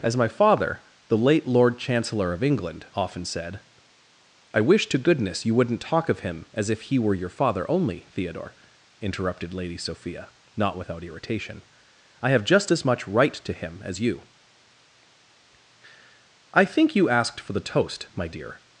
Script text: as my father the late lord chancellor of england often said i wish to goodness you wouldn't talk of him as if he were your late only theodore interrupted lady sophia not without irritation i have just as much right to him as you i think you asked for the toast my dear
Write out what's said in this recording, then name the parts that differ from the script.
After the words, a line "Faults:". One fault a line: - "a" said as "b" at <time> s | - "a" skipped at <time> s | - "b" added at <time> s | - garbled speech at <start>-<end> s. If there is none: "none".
as my father the late lord chancellor of england often said i wish to goodness you wouldn't talk of him as if he were your father only theodore interrupted lady sophia not without irritation i have just as much right to him as you i think you asked for the toast my dear
Faults:
- "late" said as "father" at 7.3 s